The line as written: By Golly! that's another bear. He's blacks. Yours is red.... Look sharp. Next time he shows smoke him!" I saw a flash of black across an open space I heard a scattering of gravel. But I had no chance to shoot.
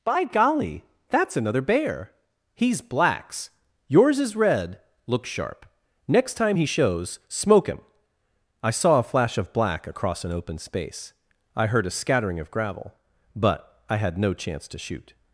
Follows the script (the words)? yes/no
yes